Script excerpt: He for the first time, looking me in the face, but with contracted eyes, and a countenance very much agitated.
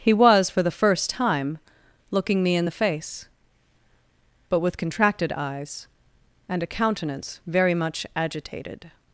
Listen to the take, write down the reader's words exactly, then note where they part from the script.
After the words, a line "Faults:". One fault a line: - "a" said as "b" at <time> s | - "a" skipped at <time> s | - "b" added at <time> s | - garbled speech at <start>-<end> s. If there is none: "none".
He was, for the first time, looking me in the face, but with contracted eyes, and a countenance very much agitated.
Faults:
- "was" added at 0.1 s